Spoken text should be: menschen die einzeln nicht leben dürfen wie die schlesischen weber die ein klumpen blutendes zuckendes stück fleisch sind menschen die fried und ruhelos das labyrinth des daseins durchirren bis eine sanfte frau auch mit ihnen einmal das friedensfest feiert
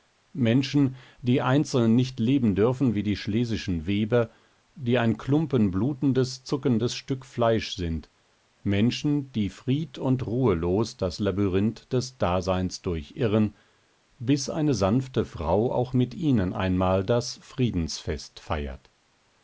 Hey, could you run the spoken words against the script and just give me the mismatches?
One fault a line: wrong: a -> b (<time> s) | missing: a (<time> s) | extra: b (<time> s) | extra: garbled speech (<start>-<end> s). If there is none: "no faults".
no faults